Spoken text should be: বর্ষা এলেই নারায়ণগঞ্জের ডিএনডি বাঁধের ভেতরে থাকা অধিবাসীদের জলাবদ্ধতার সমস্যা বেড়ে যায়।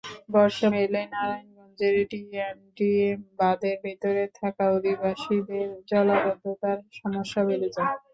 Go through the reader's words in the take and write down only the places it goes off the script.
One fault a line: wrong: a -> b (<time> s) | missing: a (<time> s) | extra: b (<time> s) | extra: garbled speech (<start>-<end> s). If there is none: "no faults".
no faults